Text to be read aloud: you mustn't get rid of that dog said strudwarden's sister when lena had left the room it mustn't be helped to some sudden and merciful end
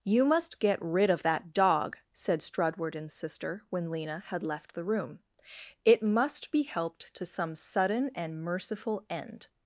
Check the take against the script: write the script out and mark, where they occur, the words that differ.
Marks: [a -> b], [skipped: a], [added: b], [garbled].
you [mustn't -> must] get rid of that dog said strudwarden's sister when lena had left the room it [mustn't -> must] be helped to some sudden and merciful end